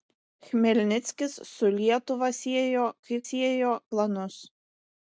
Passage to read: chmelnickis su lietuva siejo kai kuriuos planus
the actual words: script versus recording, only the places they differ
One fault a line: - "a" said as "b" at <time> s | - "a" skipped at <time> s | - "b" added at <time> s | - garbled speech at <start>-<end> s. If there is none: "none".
- "kuriuos" said as "siejo" at 3.3 s